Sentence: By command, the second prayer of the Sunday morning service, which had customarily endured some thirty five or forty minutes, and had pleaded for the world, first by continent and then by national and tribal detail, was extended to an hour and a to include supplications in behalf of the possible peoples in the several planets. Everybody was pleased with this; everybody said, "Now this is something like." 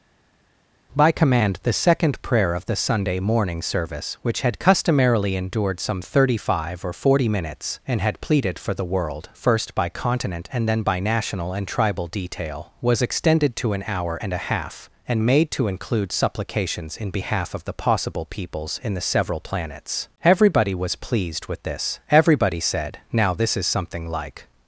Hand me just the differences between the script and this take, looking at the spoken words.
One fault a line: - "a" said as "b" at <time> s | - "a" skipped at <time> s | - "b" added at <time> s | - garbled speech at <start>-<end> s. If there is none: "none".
- "half and made" added at 14.5 s